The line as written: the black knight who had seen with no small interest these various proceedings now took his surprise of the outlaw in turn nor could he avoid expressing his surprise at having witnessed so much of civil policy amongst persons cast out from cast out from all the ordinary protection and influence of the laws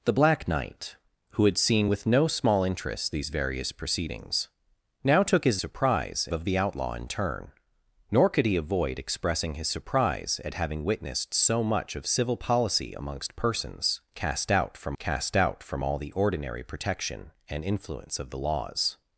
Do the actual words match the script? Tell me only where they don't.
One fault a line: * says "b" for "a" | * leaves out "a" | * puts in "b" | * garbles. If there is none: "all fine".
all fine